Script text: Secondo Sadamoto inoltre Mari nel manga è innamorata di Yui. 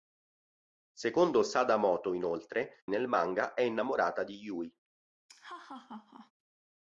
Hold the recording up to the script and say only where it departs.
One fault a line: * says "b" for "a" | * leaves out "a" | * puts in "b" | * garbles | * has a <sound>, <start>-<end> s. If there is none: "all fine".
* leaves out "Mari"
* has a laugh, 5.3-6.3 s